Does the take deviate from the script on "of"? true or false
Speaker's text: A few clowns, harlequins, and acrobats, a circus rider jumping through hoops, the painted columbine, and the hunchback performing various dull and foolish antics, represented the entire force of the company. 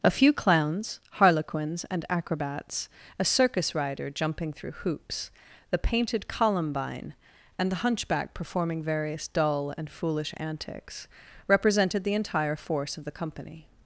false